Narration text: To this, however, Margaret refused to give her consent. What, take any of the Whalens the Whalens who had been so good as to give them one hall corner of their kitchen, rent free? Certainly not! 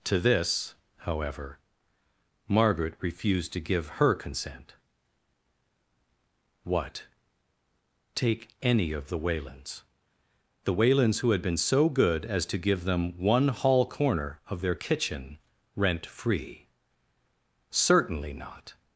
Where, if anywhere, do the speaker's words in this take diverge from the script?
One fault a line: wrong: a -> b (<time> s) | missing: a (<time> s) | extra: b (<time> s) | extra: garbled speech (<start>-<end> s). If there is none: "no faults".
no faults